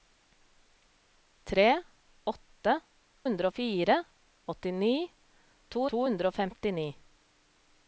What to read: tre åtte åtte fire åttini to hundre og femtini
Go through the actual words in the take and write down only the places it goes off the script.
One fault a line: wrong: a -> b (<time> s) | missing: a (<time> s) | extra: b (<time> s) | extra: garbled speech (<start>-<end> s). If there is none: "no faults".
wrong: åtte -> hundre (3.3 s)
extra: to (5.9 s)